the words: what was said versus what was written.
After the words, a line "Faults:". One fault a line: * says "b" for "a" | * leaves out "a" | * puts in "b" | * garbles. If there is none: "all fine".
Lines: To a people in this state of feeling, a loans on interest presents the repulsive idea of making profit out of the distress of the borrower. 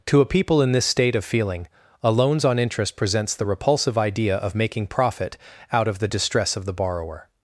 To a people in this state of feeling, a loans on interest presents the repulsive idea of making profit out of the distress of the borrower.
Faults:
all fine